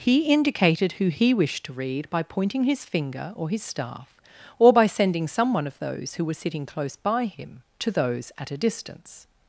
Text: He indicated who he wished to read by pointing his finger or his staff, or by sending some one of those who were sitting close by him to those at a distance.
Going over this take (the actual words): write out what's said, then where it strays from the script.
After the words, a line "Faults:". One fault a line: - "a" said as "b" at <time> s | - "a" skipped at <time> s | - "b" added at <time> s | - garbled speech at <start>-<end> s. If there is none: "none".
He indicated who he wished to read by pointing his finger or his staff, or by sending some one of those who were sitting close by him to those at a distance.
Faults:
none